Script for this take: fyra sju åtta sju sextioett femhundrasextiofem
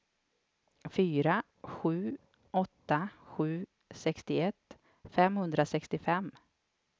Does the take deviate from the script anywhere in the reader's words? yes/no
no